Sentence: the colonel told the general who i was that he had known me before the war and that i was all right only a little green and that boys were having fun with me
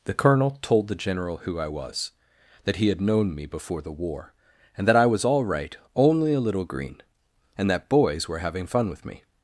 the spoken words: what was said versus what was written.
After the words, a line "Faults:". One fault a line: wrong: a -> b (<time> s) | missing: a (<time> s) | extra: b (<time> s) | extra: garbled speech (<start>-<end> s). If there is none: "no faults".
the colonel told the general who i was that he had known me before the war and that i was all right only a little green and that boys were having fun with me
Faults:
no faults